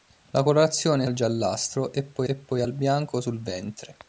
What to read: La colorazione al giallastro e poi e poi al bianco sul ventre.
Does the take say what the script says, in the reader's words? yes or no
yes